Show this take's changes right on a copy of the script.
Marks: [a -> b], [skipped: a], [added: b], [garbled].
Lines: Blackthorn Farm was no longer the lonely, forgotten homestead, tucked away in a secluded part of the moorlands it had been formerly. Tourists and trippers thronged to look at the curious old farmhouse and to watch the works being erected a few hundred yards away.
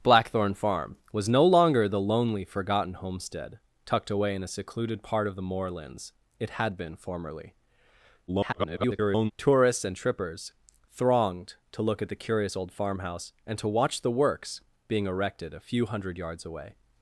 Blackthorn Farm was no longer the lonely, forgotten homestead, tucked away in a secluded part of the moorlands it had been formerly. [garbled] Tourists and trippers thronged to look at the curious old farmhouse and to watch the works being erected a few hundred yards away.